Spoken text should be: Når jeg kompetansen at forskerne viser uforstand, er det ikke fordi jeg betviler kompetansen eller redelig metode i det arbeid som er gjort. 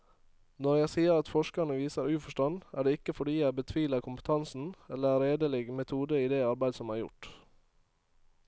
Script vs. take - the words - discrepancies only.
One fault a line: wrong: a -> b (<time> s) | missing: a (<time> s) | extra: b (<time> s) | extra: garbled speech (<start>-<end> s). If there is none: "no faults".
wrong: kompetansen -> sier (0.9 s)